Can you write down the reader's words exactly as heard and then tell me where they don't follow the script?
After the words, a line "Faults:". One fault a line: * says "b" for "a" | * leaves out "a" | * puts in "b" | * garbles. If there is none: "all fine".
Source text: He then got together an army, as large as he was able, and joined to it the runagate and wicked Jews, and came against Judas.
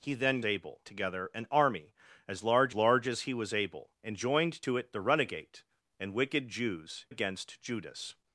He then able together an army, as large large as he was able, and joined to it the runagate and wicked Jews, against Judas.
Faults:
* says "able" for "got"
* puts in "large"
* leaves out "and came"